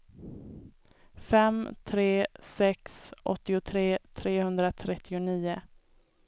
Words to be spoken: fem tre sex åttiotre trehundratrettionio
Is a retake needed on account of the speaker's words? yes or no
no